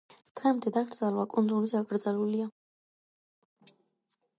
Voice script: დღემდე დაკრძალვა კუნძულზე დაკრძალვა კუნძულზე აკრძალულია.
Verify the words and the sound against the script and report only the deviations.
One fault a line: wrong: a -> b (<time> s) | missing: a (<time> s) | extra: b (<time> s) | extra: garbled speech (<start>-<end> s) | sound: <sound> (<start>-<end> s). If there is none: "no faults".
missing: დაკრძალვა კუნძულზე (1.8 s)